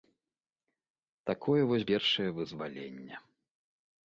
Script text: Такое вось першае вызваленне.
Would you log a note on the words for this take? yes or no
no